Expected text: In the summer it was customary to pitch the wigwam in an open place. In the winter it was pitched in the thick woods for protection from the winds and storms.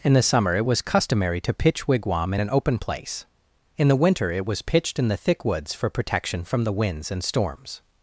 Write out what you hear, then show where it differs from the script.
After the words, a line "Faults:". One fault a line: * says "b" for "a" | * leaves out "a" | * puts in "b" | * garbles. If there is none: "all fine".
In the summer it was customary to pitch wigwam in an open place. In the winter it was pitched in the thick woods for protection from the winds and storms.
Faults:
* leaves out "the"